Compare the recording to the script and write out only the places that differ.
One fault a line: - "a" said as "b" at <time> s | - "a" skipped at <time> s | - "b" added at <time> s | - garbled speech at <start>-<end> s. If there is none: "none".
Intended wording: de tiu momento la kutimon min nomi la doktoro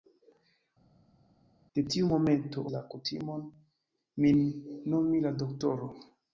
none